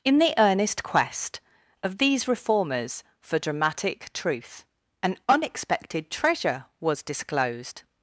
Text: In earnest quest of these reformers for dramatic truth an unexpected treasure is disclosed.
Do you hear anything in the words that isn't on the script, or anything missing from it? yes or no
yes